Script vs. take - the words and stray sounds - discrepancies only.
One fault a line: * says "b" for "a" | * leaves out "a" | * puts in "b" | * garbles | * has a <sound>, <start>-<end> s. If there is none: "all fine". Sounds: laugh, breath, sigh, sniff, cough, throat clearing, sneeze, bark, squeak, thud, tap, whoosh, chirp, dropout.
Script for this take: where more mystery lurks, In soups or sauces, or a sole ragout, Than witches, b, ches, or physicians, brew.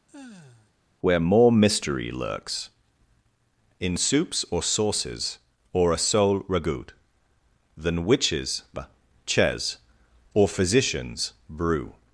* has a sigh, 0.1-0.7 s
* leaves out "b"